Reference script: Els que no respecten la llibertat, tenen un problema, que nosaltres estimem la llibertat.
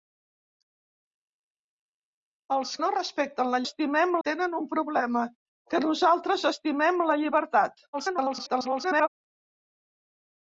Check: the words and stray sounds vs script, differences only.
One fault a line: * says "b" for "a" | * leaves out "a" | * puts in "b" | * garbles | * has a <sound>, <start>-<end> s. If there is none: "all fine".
* leaves out "que"
* says "estimem" for "llibertat"
* garbles